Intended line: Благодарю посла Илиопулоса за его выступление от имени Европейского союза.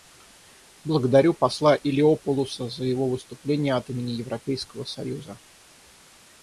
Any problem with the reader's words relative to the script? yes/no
no